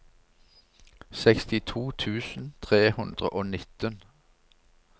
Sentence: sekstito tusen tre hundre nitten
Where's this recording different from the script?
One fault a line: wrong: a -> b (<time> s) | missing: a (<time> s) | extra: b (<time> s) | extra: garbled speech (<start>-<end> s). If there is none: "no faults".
extra: og (3.3 s)